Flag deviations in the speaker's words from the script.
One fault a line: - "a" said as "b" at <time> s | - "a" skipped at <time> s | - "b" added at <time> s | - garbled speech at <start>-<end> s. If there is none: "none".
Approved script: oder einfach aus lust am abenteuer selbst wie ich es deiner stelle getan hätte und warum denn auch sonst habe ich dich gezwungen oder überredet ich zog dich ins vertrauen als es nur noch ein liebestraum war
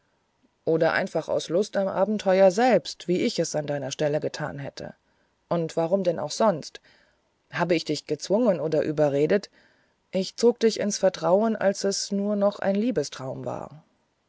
- "an" added at 3.5 s